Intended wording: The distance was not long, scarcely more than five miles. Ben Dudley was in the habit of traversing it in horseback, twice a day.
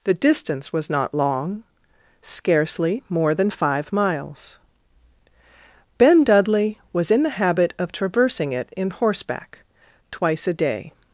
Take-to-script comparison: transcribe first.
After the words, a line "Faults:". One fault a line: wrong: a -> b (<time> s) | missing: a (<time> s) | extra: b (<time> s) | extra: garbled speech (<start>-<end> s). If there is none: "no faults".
The distance was not long, scarcely more than five miles. Ben Dudley was in the habit of traversing it in horseback, twice a day.
Faults:
no faults